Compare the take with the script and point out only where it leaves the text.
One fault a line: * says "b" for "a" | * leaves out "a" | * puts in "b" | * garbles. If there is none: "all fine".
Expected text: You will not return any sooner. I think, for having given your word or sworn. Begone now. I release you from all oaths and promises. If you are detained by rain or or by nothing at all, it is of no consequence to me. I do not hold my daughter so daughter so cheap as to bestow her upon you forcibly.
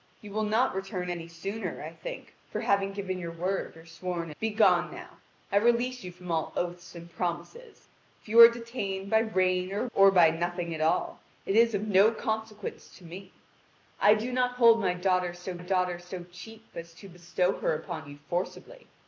all fine